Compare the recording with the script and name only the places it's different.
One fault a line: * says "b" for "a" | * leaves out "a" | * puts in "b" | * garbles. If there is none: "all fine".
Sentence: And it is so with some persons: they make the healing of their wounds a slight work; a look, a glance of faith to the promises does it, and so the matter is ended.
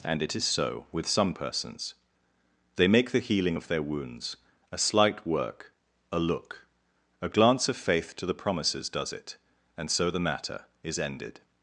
all fine